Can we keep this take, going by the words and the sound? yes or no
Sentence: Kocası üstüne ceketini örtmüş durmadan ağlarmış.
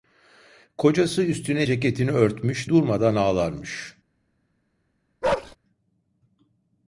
no